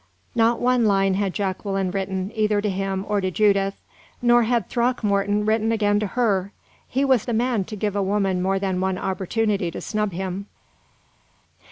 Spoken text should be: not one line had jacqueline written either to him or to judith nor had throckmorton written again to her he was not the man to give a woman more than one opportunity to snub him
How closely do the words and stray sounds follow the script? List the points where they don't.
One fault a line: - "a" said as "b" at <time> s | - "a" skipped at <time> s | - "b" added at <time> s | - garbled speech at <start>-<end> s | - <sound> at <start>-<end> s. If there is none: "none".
- "not" skipped at 7.3 s